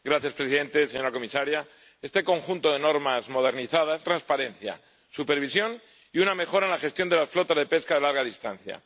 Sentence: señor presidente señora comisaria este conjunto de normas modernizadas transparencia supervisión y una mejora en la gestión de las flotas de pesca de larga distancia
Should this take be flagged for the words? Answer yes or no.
no